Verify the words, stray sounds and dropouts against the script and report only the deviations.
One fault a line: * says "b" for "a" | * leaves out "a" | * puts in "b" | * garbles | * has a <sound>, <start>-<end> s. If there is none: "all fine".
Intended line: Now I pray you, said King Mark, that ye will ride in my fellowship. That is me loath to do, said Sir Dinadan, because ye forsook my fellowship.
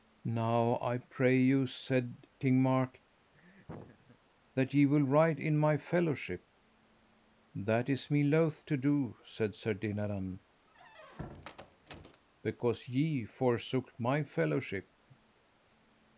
* has a laugh, 3.3-4.2 s
* has a squeak, 10.7-12.2 s